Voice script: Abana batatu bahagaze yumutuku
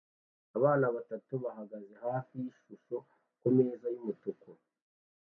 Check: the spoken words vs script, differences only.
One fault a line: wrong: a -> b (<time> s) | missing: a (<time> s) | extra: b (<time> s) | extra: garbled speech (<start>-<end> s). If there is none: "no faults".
extra: hafi yishusho kumeza (2.0 s)